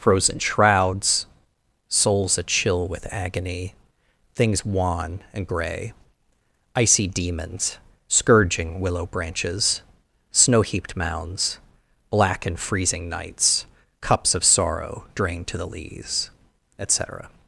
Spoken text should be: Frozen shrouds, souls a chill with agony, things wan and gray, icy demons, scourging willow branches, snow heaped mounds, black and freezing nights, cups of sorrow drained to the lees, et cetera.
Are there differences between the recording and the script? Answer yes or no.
no